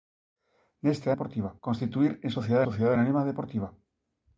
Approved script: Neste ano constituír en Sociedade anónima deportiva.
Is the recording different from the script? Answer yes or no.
yes